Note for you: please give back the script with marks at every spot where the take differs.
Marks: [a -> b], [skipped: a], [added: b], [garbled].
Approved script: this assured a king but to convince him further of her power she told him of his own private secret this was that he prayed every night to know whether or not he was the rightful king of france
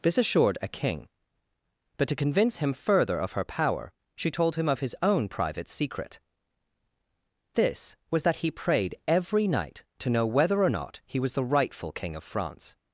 this assured a king but to convince him further of her power she told him of his own private secret this was that he prayed every night to know whether or not he was the rightful king of france